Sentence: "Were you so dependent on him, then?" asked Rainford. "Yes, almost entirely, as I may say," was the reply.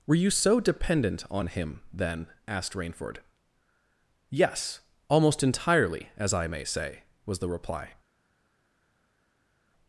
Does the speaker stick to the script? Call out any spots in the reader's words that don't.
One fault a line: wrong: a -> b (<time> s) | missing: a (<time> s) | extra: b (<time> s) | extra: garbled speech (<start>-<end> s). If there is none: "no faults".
no faults